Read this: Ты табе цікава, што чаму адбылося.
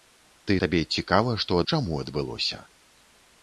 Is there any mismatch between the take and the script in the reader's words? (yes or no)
no